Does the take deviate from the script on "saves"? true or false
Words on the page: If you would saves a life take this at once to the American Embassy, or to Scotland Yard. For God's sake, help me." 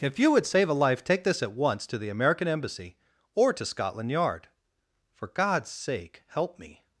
true